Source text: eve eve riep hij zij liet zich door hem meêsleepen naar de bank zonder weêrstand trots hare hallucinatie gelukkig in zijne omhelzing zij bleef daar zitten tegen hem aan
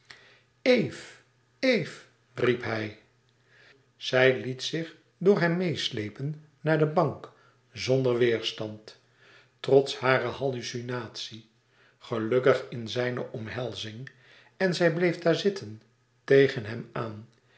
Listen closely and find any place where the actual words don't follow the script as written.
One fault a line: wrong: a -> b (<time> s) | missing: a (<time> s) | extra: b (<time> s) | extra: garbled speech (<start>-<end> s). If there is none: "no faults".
extra: en (14.6 s)